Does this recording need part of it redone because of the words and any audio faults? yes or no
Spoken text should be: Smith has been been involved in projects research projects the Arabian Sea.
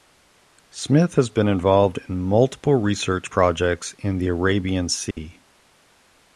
yes